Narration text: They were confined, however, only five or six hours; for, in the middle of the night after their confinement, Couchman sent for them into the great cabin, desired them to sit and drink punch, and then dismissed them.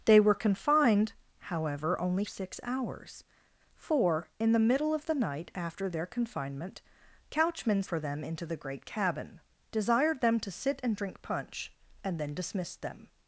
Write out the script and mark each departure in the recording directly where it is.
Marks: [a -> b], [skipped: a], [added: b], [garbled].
They were confined, however, only [skipped: five or] six hours; for, in the middle of the night after their confinement, Couchman [skipped: sent] for them into the great cabin, desired them to sit and drink punch, and then dismissed them.